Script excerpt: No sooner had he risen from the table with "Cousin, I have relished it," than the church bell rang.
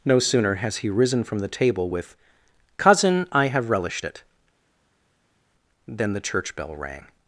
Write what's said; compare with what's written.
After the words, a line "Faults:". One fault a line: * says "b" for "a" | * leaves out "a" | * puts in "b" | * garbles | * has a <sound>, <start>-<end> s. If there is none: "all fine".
No sooner has he risen from the table with "Cousin, I have relished it," than the church bell rang.
Faults:
* says "has" for "had"